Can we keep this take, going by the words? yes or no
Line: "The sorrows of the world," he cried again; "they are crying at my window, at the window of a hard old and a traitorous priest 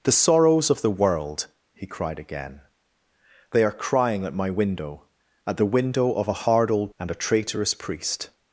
yes